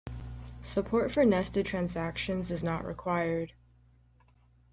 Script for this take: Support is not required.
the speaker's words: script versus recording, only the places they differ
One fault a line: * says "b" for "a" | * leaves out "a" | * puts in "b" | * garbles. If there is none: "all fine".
* puts in "for nested transactions"